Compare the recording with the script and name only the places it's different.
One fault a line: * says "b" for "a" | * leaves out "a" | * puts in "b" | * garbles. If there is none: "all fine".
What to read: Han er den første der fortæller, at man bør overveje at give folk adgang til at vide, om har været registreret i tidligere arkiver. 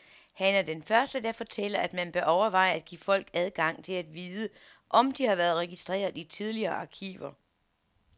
* puts in "de"